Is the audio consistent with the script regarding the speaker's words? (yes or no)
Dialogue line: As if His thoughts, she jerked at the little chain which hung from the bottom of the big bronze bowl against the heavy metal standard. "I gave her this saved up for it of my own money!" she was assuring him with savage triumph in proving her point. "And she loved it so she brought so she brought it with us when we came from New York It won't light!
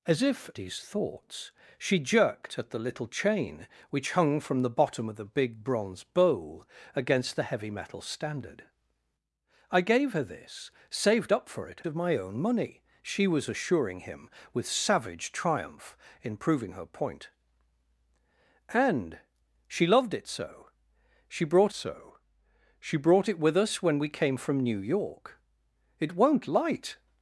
yes